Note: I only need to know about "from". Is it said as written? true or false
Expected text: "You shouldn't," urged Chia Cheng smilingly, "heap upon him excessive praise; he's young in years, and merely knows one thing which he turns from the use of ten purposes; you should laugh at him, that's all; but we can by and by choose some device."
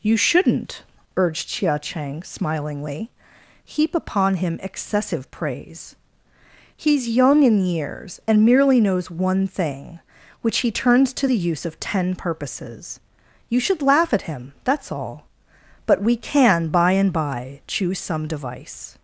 false